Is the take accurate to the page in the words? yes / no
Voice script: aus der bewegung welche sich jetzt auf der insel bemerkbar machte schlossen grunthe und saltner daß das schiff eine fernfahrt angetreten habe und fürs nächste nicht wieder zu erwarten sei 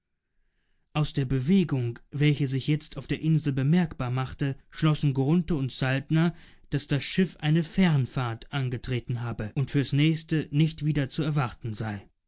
yes